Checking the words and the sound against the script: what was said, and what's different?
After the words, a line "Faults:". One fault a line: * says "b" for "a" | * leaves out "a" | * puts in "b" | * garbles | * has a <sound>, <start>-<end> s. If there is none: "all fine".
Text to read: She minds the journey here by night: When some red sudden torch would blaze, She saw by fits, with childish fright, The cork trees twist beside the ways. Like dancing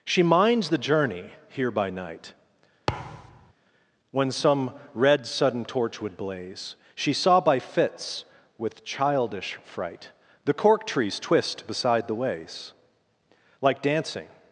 She minds the journey here by night: When some red sudden torch would blaze, She saw by fits, with childish fright, The cork trees twist beside the ways. Like dancing
Faults:
* has a thud, 2.9-3.5 s